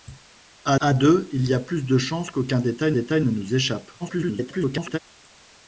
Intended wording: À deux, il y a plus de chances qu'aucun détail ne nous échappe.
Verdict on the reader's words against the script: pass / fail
fail